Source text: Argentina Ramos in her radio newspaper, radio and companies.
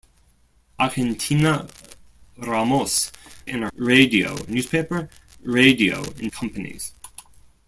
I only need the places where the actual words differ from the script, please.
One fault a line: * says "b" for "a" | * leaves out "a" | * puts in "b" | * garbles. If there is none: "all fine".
all fine